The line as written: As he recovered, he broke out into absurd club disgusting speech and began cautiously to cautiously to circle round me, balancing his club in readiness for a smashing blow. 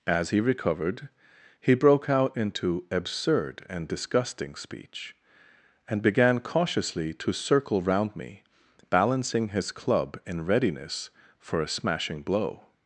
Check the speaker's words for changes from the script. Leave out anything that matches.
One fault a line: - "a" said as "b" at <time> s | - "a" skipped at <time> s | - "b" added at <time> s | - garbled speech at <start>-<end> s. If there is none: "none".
- "club" said as "and" at 3.7 s
- "cautiously to" skipped at 7.3 s